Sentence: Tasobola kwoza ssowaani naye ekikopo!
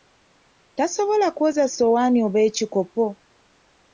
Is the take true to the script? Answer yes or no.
no